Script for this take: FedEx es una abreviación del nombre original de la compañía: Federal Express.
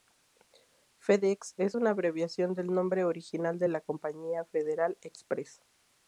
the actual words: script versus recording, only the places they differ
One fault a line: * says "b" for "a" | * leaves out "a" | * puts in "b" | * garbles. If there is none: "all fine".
all fine